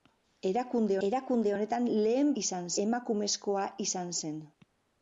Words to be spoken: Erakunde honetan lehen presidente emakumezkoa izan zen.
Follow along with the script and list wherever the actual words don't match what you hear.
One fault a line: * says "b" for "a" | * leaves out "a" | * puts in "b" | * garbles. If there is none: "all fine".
* puts in "erakunde"
* says "izan" for "presidente"